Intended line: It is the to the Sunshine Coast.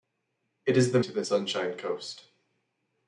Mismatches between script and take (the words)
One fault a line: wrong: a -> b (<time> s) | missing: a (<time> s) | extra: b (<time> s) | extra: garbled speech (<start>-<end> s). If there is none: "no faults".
no faults